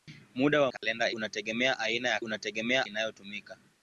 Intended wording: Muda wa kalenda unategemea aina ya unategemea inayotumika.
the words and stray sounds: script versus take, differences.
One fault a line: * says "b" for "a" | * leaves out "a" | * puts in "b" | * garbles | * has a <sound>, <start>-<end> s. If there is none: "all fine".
* has a dropout, 0.8-0.8 s